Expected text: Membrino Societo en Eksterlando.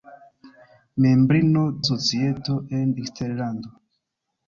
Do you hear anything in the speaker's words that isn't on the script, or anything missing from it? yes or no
no